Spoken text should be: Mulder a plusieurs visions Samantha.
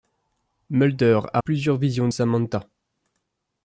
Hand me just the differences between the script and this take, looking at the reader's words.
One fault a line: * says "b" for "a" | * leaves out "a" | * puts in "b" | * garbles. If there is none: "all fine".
all fine